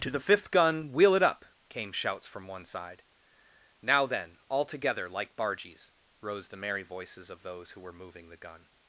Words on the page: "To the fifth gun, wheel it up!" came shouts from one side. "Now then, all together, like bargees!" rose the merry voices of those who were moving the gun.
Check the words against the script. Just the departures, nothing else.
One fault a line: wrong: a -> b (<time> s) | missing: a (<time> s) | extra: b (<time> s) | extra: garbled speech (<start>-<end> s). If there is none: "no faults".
no faults